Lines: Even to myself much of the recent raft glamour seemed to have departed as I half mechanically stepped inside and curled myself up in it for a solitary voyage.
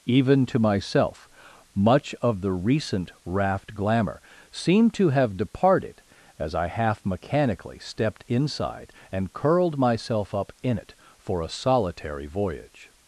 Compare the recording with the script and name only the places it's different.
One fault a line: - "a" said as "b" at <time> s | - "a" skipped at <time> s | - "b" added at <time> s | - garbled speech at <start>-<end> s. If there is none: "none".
none